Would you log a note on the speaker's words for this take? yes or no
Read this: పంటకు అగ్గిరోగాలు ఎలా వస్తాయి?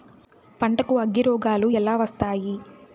no